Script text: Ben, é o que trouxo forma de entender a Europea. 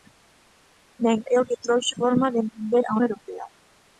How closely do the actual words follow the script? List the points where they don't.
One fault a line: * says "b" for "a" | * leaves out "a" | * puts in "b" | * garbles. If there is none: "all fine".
all fine